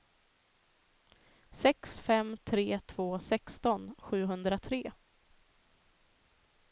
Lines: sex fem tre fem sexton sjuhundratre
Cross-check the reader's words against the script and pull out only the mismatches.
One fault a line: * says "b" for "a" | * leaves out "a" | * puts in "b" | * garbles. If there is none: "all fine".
* says "två" for "fem"